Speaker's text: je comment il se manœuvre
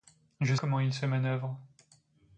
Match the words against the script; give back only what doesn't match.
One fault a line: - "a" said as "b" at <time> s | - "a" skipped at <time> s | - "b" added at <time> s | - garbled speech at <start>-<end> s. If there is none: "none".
none